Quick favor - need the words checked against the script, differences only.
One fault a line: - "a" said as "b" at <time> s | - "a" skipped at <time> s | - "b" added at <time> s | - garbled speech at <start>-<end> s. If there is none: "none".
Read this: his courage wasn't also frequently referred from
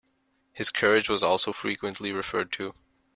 - "wasn't" said as "was" at 1.1 s
- "from" said as "to" at 2.5 s